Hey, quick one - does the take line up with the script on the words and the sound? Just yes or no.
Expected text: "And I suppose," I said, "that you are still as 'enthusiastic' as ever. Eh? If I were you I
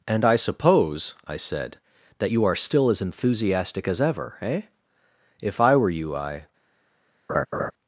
no